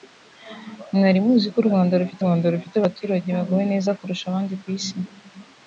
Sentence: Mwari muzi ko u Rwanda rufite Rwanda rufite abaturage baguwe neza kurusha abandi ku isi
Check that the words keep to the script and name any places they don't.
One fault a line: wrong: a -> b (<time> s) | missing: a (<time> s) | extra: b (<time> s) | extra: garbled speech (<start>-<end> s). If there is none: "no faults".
no faults